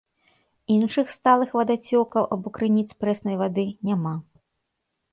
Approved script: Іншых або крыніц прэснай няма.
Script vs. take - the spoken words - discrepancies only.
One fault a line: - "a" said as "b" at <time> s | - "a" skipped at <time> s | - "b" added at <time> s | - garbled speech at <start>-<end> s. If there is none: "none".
- "сталых вадацёкаў" added at 1.2 s
- "вады" added at 3.5 s